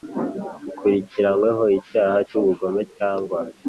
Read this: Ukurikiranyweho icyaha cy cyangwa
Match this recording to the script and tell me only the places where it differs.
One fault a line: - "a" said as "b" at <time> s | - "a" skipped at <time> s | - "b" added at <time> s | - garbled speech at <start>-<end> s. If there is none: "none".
- "ubugome" added at 2.4 s